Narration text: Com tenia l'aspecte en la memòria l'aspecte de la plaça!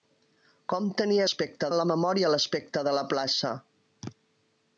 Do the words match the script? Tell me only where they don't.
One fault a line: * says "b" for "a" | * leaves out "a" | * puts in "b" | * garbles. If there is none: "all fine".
all fine